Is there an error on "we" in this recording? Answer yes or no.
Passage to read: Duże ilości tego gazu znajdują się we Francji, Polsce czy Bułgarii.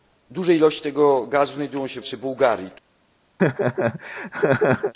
yes